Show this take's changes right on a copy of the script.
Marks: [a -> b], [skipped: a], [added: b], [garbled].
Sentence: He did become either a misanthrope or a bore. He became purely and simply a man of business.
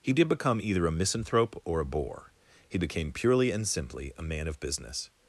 He did become either a misanthrope or a bore. He became purely and simply a man of business.